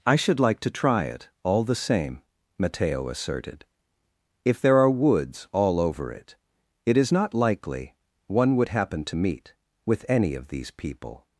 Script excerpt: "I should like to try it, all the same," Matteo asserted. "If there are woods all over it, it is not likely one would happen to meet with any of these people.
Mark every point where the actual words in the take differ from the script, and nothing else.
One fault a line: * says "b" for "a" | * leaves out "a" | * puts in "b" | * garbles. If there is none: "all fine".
all fine